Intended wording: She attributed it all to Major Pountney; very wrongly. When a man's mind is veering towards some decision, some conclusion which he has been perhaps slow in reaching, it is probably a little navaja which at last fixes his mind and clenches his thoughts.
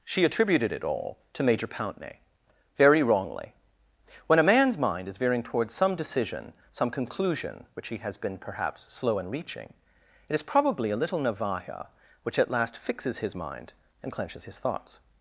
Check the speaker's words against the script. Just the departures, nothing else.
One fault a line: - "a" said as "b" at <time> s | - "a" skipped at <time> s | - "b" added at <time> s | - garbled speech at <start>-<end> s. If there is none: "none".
none